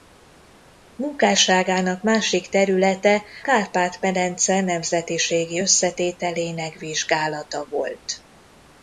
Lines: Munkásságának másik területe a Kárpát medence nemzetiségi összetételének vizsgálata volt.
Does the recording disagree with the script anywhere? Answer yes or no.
yes